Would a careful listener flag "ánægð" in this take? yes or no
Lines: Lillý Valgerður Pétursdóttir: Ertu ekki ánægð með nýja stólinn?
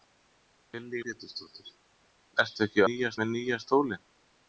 yes